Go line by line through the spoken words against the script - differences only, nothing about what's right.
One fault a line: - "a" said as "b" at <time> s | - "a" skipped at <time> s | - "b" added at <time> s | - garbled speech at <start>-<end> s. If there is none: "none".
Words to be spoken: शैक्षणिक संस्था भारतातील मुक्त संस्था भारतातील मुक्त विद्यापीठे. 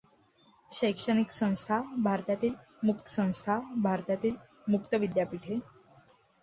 none